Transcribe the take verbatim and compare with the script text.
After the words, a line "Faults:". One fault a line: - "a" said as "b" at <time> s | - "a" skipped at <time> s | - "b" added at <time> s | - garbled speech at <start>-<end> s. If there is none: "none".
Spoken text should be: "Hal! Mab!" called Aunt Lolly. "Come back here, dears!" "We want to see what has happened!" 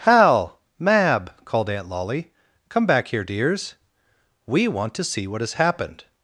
"Hal! Mab!" called Aunt Lolly. "Come back here, dears!" "We want to see what has happened!"
Faults:
none